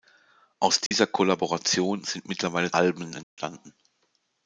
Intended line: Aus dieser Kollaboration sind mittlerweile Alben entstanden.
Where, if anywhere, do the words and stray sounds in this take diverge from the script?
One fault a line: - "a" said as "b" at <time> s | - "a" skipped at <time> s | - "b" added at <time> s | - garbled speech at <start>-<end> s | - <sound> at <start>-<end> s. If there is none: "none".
- dropout at 0.9-0.9 s
- dropout at 3.2-3.4 s